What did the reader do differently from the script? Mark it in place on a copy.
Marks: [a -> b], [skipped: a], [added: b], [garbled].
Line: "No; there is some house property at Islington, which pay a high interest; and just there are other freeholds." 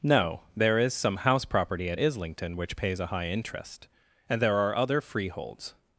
"No; there is some house property at Islington, which [pay -> pays] a high interest; and [skipped: just] there are other freeholds."